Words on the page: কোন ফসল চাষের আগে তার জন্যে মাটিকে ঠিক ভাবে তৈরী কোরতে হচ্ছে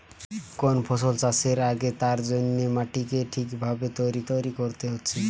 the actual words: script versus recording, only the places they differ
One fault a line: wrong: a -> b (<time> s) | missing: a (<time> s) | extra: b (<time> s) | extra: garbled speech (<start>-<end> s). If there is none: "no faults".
extra: তৈরী (4.3 s)